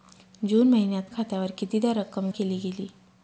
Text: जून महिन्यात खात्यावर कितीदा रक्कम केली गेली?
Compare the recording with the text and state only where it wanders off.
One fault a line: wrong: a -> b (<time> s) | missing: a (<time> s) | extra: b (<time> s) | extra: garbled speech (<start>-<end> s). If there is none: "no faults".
no faults